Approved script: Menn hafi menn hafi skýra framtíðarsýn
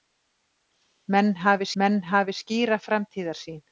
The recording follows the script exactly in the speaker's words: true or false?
true